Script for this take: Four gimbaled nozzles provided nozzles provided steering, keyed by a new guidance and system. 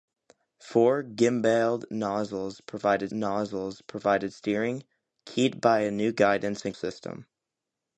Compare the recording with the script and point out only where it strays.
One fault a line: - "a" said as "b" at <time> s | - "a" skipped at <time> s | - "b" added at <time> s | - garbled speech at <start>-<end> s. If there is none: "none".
none